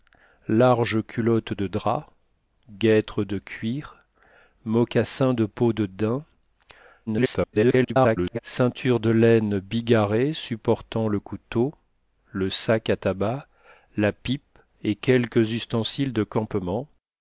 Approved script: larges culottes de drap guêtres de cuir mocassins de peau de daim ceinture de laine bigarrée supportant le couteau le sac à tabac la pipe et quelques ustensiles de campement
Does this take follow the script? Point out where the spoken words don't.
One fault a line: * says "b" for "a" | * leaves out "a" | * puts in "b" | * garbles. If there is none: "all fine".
* garbles